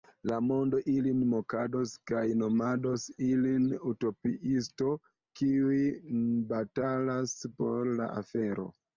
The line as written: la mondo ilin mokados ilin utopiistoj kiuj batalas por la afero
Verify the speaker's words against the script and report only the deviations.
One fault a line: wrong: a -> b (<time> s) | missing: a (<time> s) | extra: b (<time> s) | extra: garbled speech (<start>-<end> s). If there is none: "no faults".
extra: kaj nomados (2.1 s)